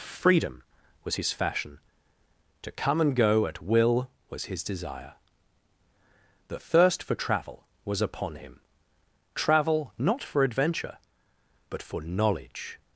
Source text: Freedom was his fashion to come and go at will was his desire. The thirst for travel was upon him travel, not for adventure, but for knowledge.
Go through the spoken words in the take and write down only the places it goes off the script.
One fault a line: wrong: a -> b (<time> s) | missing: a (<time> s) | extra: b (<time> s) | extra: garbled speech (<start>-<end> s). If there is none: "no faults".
no faults